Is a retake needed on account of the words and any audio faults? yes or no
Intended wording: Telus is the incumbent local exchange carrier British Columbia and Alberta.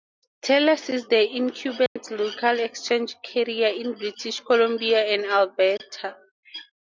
yes